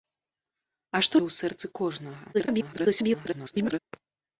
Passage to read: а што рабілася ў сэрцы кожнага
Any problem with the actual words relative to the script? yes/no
yes